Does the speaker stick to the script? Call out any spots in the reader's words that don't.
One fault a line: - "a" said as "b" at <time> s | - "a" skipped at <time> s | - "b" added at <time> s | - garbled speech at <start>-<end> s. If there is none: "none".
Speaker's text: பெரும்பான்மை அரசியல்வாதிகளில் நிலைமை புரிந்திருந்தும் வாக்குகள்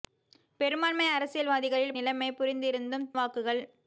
none